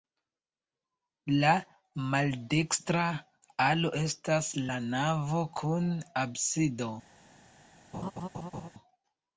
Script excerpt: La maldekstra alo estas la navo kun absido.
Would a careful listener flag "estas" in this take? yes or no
no